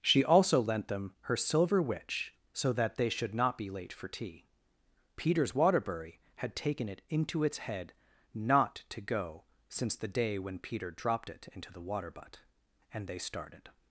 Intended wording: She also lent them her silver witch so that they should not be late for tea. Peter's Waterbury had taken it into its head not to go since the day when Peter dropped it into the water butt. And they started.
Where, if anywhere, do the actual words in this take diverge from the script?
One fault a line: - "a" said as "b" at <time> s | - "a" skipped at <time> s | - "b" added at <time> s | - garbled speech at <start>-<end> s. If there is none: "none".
none